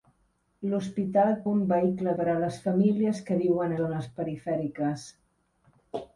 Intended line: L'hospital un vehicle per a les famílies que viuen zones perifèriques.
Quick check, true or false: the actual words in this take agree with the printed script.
true